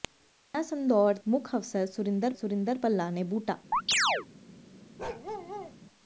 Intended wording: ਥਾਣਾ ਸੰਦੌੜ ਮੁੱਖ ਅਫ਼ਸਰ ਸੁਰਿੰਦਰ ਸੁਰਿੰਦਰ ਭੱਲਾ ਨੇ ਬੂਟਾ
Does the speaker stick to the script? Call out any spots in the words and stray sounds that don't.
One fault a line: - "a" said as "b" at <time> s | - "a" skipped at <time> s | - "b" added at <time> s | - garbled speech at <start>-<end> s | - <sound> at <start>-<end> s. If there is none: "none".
- chirp at 3.7-4.3 s
- bark at 5.0-5.8 s